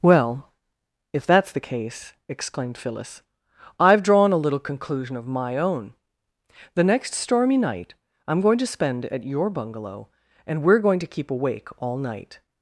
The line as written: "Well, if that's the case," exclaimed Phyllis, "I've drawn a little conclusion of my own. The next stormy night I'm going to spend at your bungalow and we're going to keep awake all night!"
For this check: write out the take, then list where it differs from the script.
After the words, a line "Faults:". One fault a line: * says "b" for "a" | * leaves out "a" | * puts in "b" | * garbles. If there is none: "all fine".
"Well, if that's the case," exclaimed Phyllis, "I've drawn a little conclusion of my own. The next stormy night I'm going to spend at your bungalow and we're going to keep awake all night!"
Faults:
all fine